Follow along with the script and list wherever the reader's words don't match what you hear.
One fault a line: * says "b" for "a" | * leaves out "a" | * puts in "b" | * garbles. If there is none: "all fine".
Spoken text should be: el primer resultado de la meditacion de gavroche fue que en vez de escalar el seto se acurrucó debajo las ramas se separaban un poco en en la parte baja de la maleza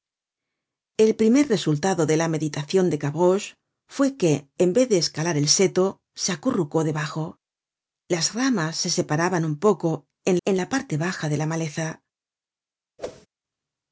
all fine